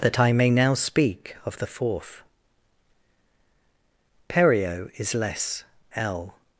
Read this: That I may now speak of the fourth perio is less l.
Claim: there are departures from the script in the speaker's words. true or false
false